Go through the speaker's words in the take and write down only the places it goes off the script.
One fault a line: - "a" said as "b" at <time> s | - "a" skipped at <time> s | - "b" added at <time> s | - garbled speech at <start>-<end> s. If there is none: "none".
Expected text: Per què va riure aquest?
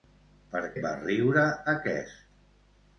- "què" skipped at 0.6 s